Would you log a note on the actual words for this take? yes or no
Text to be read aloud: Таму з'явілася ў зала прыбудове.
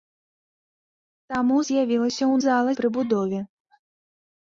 no